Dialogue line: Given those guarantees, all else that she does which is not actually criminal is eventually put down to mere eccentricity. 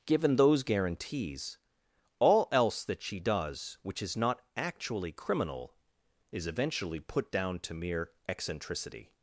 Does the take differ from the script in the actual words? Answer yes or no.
no